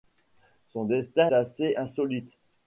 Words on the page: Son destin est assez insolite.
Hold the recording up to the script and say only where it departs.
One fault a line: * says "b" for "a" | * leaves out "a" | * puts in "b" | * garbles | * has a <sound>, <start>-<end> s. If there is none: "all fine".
* leaves out "est"